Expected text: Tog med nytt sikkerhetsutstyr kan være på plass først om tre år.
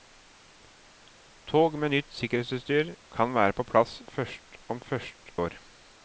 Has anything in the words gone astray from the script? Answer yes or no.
yes